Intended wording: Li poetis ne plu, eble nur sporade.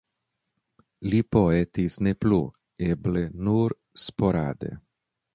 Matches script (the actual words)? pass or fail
pass